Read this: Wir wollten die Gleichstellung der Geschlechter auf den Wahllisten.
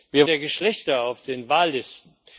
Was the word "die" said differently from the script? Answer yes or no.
yes